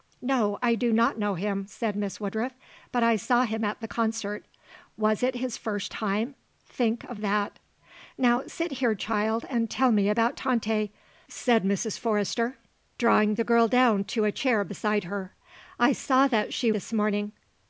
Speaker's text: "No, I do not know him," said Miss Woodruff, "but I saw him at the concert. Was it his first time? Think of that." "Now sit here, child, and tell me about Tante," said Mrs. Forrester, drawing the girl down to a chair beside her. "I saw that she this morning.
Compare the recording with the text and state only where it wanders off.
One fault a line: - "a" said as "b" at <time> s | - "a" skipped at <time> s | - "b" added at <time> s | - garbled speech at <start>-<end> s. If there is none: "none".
none